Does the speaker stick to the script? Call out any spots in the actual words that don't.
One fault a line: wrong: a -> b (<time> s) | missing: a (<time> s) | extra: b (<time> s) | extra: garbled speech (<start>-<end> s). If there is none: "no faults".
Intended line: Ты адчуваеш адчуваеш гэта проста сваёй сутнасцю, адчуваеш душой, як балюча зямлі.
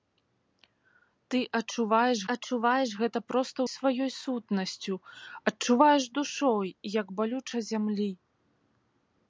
no faults